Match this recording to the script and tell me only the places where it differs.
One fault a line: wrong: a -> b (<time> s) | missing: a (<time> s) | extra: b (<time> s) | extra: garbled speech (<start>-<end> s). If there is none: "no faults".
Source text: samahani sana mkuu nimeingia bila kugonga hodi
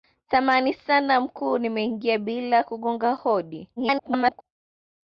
extra: garbled speech (3.8-4.4 s)